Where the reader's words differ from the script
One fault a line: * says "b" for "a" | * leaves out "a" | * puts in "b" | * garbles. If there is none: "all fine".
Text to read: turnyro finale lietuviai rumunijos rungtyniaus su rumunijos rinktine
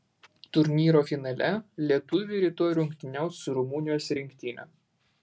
* says "rytoj" for "rumunijos"